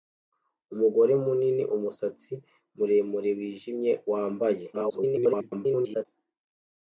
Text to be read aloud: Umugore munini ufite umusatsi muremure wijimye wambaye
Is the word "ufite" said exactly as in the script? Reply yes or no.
no